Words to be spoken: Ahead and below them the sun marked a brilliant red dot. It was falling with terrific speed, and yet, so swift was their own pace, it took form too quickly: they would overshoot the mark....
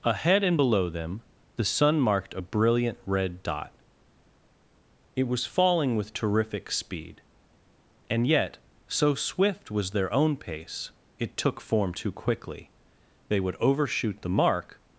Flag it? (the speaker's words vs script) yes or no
no